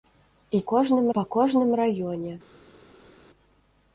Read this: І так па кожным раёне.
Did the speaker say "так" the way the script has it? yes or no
no